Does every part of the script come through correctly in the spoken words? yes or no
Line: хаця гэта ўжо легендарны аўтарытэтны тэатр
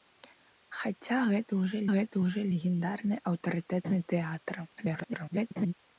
no